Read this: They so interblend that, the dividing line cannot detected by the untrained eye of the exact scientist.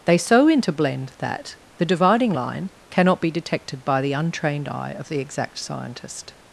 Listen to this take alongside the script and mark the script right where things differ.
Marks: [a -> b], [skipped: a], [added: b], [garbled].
They so interblend that, the dividing line cannot [added: be] detected by the untrained eye of the exact scientist.